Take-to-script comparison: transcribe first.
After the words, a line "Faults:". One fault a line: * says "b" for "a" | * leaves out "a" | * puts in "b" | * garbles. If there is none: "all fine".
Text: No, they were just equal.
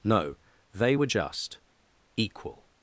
No, they were just equal.
Faults:
all fine